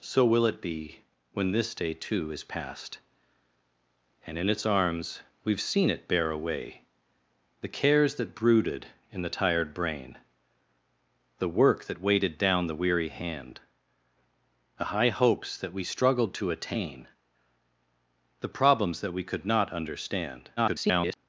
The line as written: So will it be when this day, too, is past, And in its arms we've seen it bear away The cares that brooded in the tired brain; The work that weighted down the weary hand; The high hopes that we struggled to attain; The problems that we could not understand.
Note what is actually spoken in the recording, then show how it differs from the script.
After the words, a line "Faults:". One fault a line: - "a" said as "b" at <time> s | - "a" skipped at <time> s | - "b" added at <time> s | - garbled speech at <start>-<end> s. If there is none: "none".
So will it be when this day, too, is past, And in its arms we've seen it bear away The cares that brooded in the tired brain; The work that weighted down the weary hand; The high hopes that we struggled to attain; The problems that we could not understand. [garbled]
Faults:
- garbled speech at 20.6-21.2 s